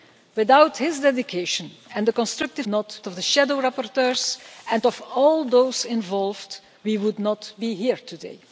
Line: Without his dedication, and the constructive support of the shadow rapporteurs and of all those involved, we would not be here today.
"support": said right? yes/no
no